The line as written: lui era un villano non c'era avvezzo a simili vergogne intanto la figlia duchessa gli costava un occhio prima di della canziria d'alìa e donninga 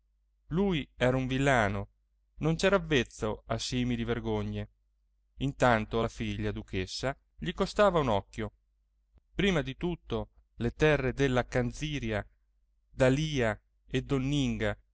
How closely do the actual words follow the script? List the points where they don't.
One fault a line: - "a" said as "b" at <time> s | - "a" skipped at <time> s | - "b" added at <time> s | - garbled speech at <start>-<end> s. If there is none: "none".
- "tutto le terre" added at 9.7 s